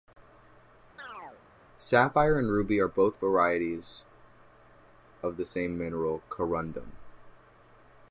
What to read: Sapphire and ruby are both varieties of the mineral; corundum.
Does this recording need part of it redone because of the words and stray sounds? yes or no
yes